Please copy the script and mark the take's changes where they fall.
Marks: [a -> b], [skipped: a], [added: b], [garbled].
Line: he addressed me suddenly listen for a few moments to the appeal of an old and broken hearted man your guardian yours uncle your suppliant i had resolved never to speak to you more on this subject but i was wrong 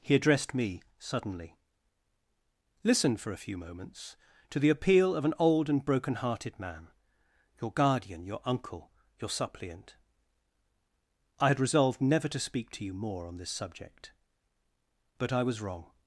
he addressed me suddenly listen for a few moments to the appeal of an old and broken hearted man your guardian [yours -> your] uncle your suppliant i had resolved never to speak to you more on this subject but i was wrong